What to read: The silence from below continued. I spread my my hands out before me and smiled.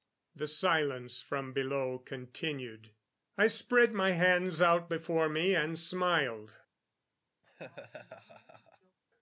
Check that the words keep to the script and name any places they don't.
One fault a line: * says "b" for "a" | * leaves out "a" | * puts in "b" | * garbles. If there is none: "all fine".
* leaves out "my"